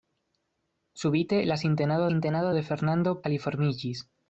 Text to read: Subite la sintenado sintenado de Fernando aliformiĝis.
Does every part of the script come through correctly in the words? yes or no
yes